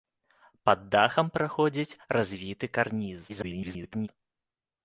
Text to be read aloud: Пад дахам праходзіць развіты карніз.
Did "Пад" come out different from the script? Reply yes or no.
no